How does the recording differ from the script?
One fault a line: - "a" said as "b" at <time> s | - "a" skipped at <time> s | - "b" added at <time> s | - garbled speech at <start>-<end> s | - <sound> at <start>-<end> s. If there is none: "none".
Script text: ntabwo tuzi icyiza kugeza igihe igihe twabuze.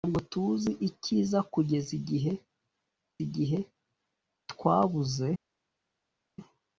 none